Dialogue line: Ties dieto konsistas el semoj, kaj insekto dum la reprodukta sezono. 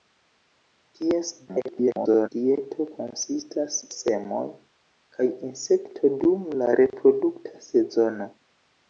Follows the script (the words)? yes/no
no